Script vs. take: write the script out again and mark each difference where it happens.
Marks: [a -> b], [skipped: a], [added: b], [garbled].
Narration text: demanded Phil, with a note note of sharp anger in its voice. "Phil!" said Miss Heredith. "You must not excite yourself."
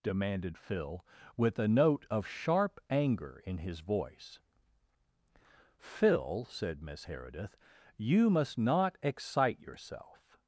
demanded Phil, with a note [skipped: note] of sharp anger in [its -> his] voice. "Phil!" said Miss Heredith. "You must not excite yourself."